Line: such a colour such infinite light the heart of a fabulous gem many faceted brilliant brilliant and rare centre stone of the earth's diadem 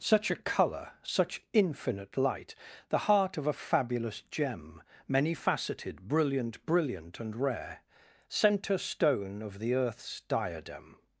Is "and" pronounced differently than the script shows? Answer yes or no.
no